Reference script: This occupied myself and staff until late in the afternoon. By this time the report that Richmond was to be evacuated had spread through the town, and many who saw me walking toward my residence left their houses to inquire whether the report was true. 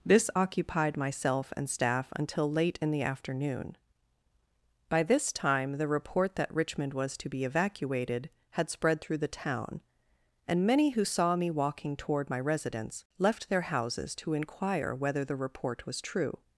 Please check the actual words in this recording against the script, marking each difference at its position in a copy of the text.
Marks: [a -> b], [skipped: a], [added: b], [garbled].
This occupied myself and staff until late in the afternoon. By this time the report that Richmond was to be evacuated had spread through the town, and many who saw me walking toward my residence left their houses to inquire whether the report was true.